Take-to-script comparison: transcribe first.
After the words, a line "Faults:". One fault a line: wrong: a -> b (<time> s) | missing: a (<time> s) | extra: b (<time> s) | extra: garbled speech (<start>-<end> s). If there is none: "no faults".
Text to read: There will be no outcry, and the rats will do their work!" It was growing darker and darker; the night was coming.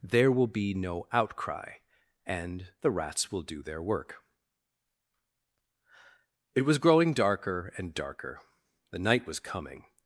There will be no outcry, and the rats will do their work!" It was growing darker and darker; the night was coming.
Faults:
no faults